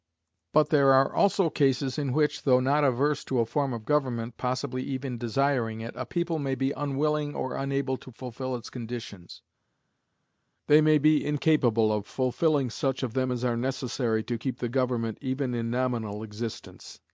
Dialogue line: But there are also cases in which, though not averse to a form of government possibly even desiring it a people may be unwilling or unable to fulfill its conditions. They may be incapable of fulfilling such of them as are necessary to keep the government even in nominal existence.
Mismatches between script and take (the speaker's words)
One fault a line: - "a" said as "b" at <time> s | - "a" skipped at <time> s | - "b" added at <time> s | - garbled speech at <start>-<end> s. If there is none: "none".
none